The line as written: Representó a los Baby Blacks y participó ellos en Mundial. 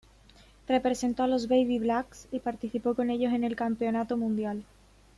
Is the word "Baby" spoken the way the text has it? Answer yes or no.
yes